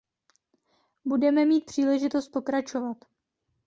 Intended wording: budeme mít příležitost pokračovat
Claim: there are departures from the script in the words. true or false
false